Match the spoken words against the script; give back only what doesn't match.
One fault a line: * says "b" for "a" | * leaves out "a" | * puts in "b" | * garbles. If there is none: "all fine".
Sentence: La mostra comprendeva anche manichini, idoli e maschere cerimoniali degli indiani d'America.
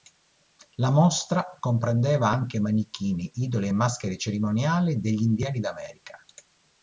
all fine